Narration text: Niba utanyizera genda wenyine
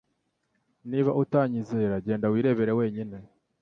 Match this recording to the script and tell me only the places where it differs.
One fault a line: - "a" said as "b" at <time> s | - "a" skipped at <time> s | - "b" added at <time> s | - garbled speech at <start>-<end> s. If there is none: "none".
- "wirebere" added at 2.3 s